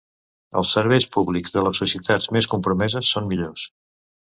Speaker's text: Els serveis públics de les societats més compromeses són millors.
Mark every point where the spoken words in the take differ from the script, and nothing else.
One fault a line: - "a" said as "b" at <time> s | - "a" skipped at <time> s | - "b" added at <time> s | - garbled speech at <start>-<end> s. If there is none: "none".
none